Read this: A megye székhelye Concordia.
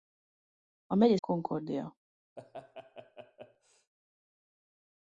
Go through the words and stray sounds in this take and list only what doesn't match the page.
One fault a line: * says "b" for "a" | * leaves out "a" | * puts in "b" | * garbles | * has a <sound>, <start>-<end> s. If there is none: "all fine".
* leaves out "székhelye"
* has a laugh, 2.4-3.9 s